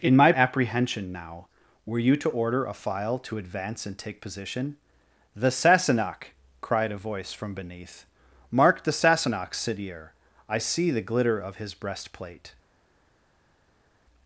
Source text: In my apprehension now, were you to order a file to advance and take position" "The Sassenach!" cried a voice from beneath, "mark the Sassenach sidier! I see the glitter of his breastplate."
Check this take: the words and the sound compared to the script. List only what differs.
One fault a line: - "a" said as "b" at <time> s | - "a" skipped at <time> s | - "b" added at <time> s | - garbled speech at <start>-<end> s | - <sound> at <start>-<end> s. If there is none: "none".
none